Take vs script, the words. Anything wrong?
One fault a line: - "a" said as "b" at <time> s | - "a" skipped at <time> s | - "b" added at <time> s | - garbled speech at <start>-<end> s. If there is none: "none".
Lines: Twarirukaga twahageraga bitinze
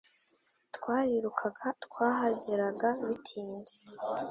none